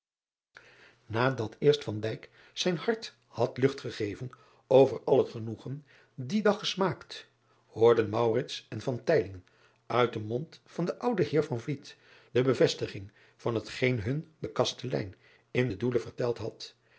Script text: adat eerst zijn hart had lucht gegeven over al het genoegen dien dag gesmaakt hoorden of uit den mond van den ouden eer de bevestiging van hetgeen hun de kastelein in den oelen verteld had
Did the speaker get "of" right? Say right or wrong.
wrong